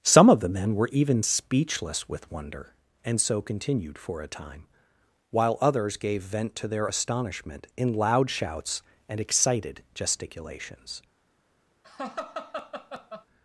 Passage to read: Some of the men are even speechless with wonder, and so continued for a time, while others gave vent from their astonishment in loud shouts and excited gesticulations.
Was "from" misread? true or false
true